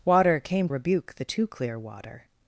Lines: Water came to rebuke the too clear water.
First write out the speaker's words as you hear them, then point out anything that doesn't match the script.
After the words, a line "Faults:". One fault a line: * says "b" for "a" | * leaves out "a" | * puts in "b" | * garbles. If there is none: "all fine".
Water came rebuke the too clear water.
Faults:
* leaves out "to"